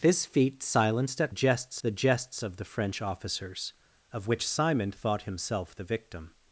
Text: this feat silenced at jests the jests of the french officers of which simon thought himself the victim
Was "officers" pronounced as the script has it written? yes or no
yes